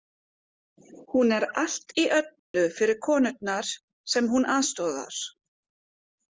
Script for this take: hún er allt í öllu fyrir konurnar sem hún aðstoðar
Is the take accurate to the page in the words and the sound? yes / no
no